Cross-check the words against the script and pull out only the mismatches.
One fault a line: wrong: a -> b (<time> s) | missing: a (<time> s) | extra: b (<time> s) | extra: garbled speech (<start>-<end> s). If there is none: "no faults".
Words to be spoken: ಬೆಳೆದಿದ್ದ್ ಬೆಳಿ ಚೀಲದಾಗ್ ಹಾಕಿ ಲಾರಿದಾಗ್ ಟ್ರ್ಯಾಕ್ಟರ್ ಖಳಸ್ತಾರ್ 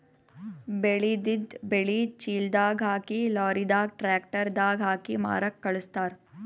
extra: ದಾಗ್ ಹಾಕಿ ಮಾರಕ್ಕ್ (4.6 s)